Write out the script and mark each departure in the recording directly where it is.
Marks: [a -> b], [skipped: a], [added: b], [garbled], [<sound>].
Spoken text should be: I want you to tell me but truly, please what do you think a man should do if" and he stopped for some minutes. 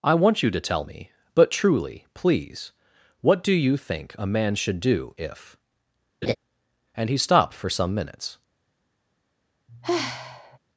I want you to tell me but truly, please what do you think a man should do if" [laugh] and he stopped for some minutes. [sigh]